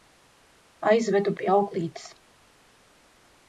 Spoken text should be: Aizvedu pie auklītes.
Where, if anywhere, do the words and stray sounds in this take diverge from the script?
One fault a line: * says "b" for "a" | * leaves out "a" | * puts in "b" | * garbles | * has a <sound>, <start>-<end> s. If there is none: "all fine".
all fine